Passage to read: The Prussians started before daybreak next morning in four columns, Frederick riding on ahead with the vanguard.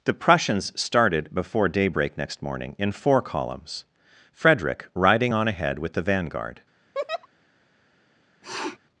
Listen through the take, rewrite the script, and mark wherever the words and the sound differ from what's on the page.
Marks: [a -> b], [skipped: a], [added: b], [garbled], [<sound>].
The Prussians started before daybreak next morning in four columns, Frederick riding on ahead with the vanguard. [laugh] [sniff]